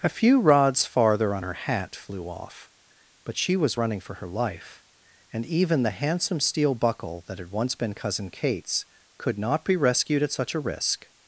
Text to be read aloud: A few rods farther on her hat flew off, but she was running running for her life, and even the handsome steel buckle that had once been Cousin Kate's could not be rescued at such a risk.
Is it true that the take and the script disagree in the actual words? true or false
true